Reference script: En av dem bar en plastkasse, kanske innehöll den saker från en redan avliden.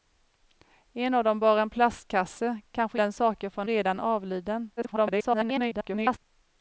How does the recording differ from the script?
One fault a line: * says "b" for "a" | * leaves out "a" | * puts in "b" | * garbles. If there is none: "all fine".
* leaves out "innehöll"
* leaves out "en"
* garbles